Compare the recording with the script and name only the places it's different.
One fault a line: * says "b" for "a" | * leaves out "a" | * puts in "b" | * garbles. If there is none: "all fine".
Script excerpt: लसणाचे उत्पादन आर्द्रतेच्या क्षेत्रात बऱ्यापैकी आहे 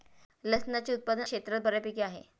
* leaves out "आर्द्रतेच्या"